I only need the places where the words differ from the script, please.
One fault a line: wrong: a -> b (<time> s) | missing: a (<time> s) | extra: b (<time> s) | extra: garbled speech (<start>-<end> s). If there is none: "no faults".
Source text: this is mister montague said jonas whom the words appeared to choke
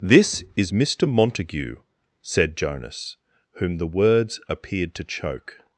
no faults